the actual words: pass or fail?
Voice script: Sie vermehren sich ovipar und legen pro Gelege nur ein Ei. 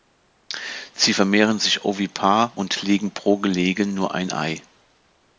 pass